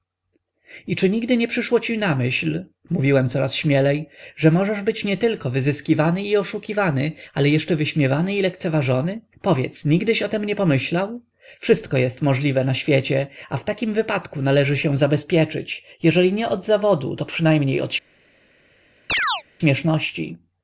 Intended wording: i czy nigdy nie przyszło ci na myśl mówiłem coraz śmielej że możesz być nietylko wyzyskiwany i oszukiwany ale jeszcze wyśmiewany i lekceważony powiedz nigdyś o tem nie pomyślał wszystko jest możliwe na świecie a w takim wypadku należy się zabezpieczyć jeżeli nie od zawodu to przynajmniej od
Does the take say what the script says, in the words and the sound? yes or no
no